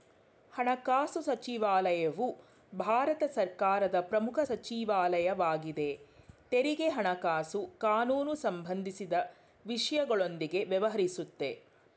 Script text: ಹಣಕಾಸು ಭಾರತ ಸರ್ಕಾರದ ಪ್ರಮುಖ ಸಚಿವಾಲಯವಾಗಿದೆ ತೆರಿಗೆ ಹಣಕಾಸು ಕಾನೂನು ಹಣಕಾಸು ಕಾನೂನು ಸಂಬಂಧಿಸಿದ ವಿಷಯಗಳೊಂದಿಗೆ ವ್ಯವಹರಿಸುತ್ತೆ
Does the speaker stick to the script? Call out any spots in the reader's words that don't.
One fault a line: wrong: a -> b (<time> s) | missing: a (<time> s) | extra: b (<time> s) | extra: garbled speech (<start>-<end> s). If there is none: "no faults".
extra: ಸಚಿವಾಲಯವು (1.2 s)
missing: ಹಣಕಾಸು ಕಾನೂನು (8.3 s)